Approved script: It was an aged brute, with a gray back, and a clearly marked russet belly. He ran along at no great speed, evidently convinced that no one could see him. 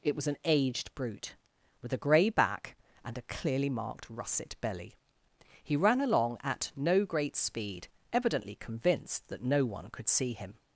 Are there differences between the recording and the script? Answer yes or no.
no